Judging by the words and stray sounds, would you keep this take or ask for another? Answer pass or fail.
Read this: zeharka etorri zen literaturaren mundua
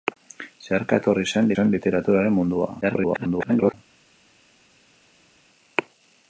fail